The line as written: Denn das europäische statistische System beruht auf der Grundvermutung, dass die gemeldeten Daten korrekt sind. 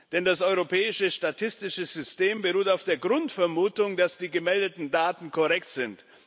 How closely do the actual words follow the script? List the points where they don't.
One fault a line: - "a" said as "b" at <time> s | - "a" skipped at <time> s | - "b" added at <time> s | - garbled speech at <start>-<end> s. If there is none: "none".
none